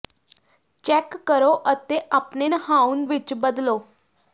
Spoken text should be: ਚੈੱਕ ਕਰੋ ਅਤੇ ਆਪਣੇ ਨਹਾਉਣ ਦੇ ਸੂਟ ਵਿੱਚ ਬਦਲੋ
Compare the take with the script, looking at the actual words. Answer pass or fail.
fail